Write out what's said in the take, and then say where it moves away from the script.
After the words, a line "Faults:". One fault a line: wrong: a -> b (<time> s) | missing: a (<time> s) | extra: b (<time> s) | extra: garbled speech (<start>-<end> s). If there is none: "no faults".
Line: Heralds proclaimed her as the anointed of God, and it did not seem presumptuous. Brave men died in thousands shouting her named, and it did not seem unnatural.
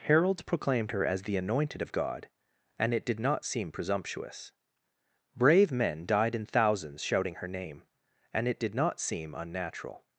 Heralds proclaimed her as the anointed of God, and it did not seem presumptuous. Brave men died in thousands shouting her name, and it did not seem unnatural.
Faults:
wrong: named -> name (7.5 s)